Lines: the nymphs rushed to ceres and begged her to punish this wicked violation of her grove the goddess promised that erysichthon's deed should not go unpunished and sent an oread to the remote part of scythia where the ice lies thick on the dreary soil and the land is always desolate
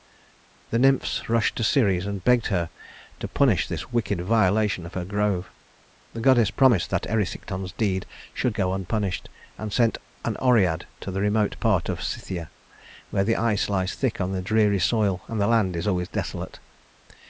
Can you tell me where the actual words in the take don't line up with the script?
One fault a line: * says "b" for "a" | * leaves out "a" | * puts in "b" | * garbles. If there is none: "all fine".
* leaves out "not"